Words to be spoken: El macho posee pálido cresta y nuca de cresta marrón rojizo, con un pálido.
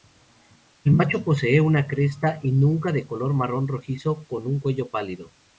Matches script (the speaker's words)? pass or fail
fail